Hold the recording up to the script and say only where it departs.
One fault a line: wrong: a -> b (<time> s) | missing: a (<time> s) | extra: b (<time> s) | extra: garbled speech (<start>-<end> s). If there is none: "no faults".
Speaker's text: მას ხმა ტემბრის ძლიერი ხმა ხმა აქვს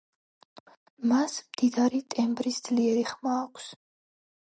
wrong: ხმა -> მდიდარი (1.5 s)
missing: ხმა (3.3 s)